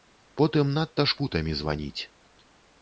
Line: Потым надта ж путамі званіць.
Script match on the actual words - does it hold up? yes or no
yes